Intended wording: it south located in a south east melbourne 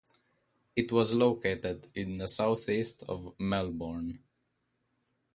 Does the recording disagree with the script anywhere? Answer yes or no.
yes